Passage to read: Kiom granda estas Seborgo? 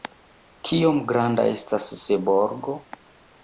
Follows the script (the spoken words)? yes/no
yes